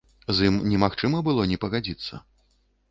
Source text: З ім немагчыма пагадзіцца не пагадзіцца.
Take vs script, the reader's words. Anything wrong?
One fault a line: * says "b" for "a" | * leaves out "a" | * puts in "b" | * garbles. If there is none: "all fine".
* says "было" for "пагадзіцца"